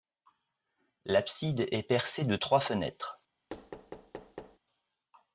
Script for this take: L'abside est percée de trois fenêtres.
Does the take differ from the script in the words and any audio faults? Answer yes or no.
yes